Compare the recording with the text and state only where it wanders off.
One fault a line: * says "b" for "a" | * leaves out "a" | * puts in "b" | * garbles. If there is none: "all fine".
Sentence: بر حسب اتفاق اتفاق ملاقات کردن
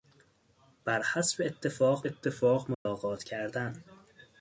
all fine